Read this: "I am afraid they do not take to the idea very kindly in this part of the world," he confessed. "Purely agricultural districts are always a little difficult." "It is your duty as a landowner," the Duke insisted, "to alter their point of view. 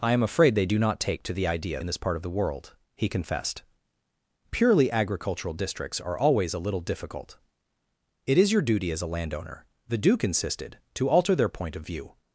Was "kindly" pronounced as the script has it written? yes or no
no